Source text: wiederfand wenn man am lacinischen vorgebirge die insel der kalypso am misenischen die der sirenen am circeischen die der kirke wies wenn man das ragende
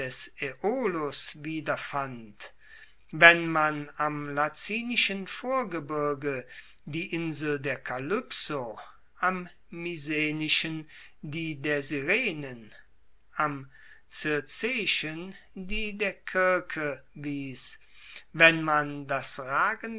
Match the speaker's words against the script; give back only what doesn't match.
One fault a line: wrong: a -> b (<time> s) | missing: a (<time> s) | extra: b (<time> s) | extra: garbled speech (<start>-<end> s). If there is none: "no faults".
no faults